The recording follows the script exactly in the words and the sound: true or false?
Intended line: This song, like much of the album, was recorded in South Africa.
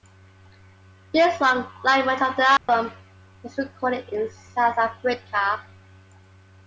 false